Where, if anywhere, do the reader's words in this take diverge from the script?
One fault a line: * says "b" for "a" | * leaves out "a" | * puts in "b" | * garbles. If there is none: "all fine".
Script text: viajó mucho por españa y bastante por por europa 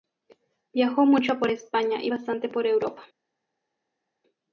* leaves out "por"